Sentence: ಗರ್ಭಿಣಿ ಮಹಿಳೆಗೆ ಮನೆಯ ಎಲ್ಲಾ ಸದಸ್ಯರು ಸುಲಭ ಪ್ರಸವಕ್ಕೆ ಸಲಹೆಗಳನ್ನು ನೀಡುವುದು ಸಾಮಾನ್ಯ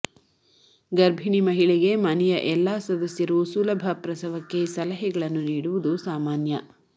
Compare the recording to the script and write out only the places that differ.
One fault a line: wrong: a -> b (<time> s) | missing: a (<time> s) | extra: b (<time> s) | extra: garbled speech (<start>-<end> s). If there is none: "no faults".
no faults